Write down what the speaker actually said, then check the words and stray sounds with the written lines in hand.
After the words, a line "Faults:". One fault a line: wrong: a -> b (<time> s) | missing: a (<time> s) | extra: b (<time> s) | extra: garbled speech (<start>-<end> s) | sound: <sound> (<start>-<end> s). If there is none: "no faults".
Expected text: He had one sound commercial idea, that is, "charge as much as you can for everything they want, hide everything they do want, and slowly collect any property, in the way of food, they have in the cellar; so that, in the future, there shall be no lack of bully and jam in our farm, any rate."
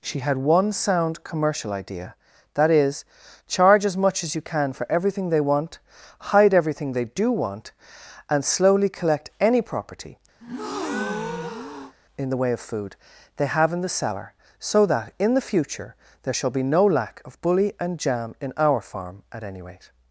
She had one sound commercial idea, that is, "charge as much as you can for everything they want, hide everything they do want, and slowly collect any property, in the way of food, they have in the cellar; so that, in the future, there shall be no lack of bully and jam in our farm, at any rate."
Faults:
wrong: He -> She (0.0 s)
sound: breath (10.4-11.9 s)
extra: at (19.3 s)